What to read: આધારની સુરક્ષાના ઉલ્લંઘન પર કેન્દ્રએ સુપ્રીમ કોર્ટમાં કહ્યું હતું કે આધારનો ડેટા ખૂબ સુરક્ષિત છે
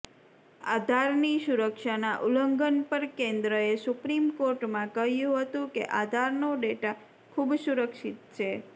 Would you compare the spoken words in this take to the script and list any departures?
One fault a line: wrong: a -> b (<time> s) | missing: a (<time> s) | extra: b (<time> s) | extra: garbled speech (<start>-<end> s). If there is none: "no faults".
no faults